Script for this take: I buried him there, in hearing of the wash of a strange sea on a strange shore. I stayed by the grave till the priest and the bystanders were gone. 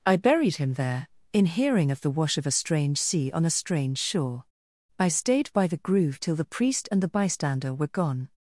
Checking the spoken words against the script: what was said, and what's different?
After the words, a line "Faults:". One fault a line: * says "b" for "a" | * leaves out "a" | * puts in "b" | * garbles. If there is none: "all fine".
I buried him there, in hearing of the wash of a strange sea on a strange shore. I stayed by the groove till the priest and the bystander were gone.
Faults:
* says "groove" for "grave"
* says "bystander" for "bystanders"